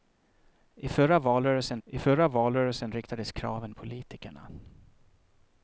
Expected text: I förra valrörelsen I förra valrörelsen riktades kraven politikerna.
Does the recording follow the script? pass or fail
pass